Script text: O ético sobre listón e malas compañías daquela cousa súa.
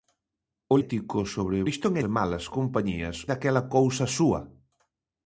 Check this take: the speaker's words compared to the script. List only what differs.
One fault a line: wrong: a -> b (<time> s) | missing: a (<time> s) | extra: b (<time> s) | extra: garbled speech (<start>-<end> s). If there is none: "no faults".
no faults